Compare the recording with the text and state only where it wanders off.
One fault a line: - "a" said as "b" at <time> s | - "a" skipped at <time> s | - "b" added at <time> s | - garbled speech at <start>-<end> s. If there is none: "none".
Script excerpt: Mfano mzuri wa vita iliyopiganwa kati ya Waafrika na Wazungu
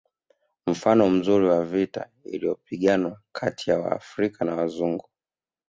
none